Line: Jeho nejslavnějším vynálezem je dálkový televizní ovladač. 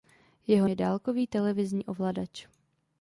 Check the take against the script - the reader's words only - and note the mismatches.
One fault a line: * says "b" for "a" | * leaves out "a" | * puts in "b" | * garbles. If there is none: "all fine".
* leaves out "nejslavnějším vynálezem"